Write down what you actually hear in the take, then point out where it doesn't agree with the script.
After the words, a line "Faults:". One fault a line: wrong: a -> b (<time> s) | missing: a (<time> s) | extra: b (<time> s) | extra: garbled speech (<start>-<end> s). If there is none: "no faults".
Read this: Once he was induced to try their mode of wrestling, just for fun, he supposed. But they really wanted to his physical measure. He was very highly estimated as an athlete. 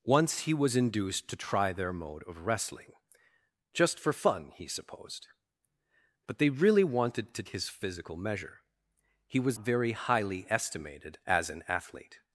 Once he was induced to try their mode of wrestling, just for fun, he supposed. But they really wanted to his physical measure. He was very highly estimated as an athlete.
Faults:
no faults